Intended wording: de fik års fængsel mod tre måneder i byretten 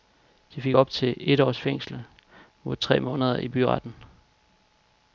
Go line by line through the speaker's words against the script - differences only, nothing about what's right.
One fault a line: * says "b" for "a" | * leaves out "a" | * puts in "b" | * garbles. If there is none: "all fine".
* puts in "op til et"